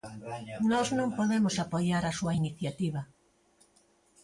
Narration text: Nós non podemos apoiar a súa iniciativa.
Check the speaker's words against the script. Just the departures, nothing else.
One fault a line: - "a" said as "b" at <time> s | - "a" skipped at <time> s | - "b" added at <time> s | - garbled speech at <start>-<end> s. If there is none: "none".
none